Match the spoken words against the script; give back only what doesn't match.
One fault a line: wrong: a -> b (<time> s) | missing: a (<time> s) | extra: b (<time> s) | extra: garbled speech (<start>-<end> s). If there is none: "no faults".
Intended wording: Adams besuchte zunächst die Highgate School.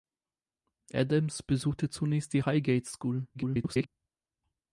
extra: garbled speech (3.3-3.9 s)